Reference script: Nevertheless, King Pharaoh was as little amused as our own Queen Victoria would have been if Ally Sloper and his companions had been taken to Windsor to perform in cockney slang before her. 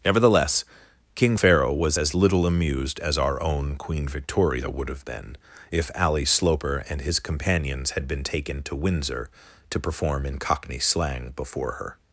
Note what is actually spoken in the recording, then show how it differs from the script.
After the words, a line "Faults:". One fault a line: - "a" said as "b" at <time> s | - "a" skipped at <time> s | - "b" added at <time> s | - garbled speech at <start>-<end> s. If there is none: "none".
Nevertheless, King Pharaoh was as little amused as our own Queen Victoria would have been if Ally Sloper and his companions had been taken to Windsor to perform in cockney slang before her.
Faults:
none